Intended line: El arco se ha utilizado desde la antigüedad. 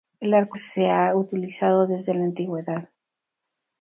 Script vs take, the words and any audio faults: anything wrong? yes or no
no